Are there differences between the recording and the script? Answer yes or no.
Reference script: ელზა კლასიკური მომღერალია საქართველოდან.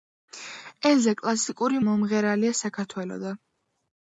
no